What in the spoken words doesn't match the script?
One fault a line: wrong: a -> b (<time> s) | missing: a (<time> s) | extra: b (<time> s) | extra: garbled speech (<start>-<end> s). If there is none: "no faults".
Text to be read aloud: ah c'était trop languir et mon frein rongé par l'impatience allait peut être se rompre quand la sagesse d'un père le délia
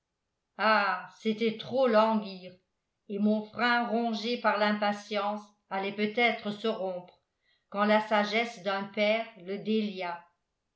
no faults